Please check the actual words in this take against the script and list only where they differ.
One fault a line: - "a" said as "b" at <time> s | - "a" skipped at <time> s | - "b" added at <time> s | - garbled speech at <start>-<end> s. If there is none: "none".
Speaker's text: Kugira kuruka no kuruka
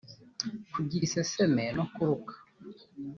- "kuruka" said as "iseseme" at 1.1 s